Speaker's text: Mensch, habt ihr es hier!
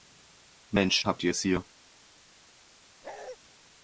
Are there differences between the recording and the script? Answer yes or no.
no